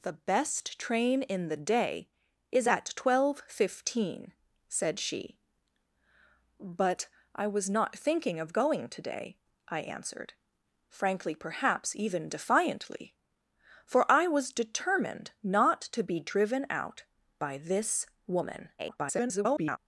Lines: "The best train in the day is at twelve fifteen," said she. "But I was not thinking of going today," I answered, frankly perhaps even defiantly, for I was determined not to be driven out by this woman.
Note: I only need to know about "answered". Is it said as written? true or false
true